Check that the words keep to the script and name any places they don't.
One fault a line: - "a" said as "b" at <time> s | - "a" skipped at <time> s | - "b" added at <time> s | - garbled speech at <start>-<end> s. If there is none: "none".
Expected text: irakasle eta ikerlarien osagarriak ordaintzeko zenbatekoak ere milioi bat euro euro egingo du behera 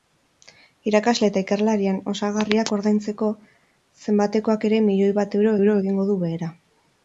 none